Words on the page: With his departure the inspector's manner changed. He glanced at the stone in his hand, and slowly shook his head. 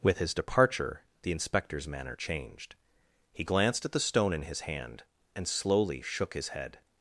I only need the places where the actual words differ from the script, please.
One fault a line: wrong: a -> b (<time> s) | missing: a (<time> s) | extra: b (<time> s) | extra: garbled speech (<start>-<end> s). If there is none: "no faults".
no faults